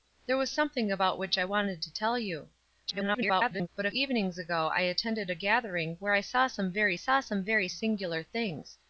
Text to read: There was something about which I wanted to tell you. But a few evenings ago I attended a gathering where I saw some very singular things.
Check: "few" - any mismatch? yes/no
yes